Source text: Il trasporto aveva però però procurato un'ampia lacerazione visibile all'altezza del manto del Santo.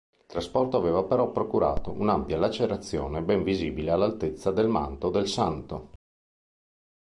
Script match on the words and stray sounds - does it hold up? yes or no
no